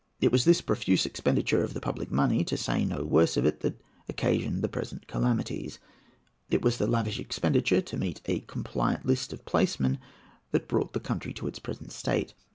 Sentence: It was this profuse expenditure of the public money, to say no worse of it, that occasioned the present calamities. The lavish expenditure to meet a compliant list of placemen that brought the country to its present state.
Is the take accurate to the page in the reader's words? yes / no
no